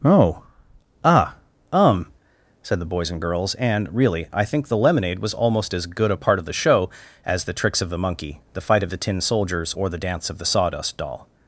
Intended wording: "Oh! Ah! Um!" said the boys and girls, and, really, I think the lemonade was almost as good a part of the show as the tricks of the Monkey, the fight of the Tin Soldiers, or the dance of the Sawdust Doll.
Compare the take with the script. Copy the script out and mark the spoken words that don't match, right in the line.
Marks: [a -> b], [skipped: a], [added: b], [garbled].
"Oh! Ah! Um!" said the boys and girls, and, really, I think the lemonade was almost as good a part of the show as the tricks of the Monkey, the fight of the Tin Soldiers, or the dance of the Sawdust Doll.